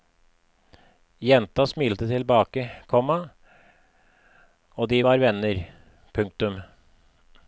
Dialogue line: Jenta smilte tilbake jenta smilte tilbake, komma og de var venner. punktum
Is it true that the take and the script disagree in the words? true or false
true